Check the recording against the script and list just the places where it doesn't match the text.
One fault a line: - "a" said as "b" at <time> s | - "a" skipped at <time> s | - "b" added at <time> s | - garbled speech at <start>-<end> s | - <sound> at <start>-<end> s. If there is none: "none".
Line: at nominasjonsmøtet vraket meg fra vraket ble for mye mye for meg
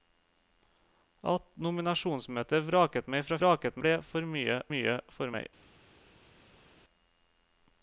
none